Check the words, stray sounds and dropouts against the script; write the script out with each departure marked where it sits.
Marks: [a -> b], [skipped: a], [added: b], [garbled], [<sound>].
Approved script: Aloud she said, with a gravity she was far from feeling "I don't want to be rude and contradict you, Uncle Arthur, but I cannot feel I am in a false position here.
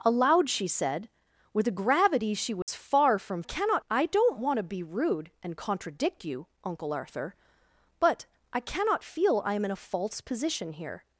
Aloud she said, with a gravity she was [dropout] far from [feeling -> cannot] "I don't want to be rude and contradict you, Uncle Arthur, but I cannot feel I am in a false position here.